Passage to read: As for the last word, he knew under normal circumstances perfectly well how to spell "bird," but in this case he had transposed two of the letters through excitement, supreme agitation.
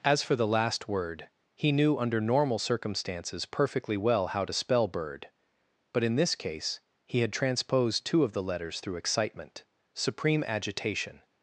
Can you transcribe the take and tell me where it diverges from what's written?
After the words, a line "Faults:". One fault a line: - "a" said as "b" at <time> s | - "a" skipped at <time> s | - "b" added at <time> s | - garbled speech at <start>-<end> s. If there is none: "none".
As for the last word, he knew under normal circumstances perfectly well how to spell "bird," but in this case he had transposed two of the letters through excitement, supreme agitation.
Faults:
none